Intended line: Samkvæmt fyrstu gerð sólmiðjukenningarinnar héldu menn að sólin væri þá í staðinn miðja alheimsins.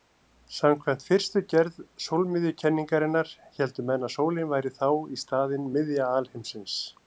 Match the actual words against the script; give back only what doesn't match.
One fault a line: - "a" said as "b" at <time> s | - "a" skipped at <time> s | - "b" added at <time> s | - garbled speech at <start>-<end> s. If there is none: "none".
none